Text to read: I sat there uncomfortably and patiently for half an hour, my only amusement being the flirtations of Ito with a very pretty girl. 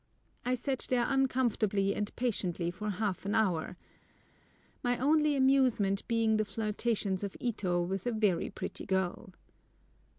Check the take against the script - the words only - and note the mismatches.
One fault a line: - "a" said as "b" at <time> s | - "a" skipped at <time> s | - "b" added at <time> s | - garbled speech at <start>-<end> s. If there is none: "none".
none